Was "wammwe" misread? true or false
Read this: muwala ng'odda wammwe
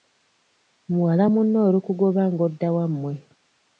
false